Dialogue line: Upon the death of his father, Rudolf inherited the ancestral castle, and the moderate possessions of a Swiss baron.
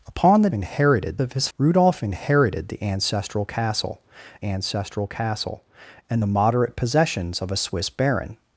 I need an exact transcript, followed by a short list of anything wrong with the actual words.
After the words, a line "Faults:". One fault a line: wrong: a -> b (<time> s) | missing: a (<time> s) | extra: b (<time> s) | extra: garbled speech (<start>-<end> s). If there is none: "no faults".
Upon the inherited of his Rudolf inherited the ancestral castle ancestral castle, and the moderate possessions of a Swiss baron.
Faults:
wrong: death -> inherited (0.5 s)
missing: father (1.5 s)
extra: ancestral castle (4.4 s)